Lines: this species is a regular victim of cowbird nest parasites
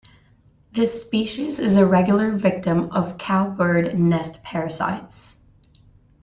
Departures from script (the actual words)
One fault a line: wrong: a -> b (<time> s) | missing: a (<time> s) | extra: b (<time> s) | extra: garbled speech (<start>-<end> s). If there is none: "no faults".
no faults